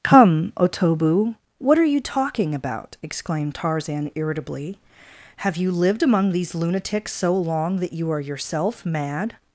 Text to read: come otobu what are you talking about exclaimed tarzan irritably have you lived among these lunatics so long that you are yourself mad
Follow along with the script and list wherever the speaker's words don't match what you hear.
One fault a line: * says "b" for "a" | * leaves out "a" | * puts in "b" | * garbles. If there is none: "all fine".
all fine